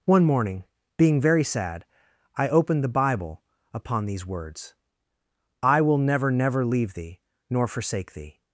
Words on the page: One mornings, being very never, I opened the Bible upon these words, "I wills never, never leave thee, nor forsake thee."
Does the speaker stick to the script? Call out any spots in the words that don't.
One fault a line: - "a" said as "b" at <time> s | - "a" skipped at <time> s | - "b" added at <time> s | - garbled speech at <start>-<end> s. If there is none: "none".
- "mornings" said as "morning" at 0.2 s
- "never" said as "sad" at 1.4 s
- "wills" said as "will" at 5.8 s